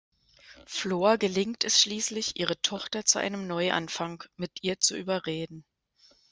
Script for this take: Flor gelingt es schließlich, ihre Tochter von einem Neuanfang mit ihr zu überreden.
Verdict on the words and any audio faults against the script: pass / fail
fail